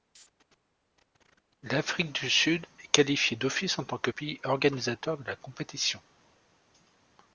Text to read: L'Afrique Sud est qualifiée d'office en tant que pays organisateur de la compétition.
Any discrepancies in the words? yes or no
yes